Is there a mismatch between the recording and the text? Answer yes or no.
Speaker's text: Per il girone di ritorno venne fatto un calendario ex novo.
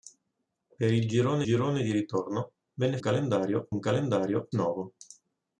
yes